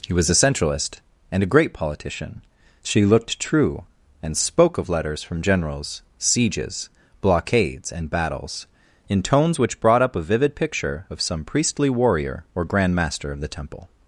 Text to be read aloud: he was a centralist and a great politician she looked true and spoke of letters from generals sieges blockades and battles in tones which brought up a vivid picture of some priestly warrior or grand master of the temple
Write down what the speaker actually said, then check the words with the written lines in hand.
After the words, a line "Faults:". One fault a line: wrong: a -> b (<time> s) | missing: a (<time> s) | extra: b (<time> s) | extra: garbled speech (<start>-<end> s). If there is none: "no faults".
he was a centralist and a great politician she looked true and spoke of letters from generals sieges blockades and battles in tones which brought up a vivid picture of some priestly warrior or grand master of the temple
Faults:
no faults